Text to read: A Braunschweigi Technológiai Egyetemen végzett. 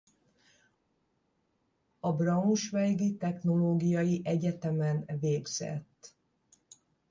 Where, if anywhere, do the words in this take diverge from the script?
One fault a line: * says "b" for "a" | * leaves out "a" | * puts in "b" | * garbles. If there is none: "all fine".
all fine